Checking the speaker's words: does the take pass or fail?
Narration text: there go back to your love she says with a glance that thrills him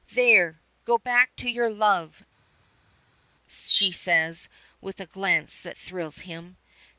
pass